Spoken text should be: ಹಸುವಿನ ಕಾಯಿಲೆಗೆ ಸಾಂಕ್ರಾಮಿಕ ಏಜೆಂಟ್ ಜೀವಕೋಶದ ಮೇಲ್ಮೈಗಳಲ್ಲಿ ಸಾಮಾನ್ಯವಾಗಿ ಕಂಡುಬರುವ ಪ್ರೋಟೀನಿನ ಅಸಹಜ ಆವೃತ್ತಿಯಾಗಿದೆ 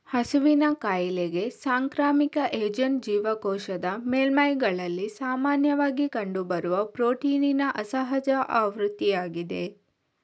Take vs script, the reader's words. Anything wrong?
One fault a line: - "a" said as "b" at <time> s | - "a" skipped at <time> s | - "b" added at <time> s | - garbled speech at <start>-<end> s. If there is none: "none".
none